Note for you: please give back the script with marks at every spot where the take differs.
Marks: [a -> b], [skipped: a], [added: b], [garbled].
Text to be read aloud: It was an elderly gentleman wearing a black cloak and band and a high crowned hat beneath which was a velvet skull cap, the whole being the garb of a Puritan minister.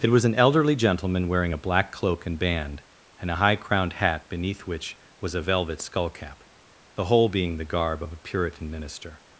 It was an elderly gentleman wearing a black cloak and band and a high crowned hat beneath which was a velvet skull cap, the whole being the garb of a Puritan minister.